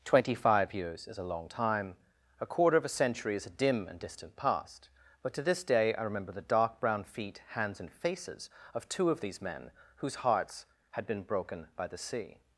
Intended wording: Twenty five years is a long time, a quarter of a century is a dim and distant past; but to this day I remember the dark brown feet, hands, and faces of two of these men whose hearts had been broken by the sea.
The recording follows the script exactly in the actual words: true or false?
true